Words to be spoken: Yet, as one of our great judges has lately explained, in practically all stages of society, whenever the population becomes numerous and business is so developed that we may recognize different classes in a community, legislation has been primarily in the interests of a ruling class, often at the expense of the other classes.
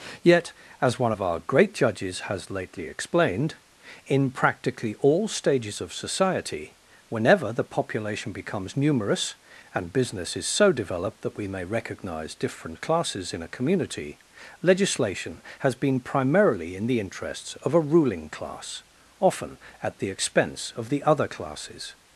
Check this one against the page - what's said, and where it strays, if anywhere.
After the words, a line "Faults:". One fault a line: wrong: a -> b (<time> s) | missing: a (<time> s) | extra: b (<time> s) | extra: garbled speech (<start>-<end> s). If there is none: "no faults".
Yet, as one of our great judges has lately explained, in practically all stages of society, whenever the population becomes numerous and business is so developed that we may recognize different classes in a community, legislation has been primarily in the interests of a ruling class, often at the expense of the other classes.
Faults:
no faults